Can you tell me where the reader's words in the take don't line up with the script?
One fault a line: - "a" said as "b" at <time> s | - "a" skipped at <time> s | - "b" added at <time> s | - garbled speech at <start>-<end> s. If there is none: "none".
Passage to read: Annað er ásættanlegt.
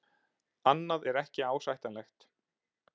- "ekki" added at 1.2 s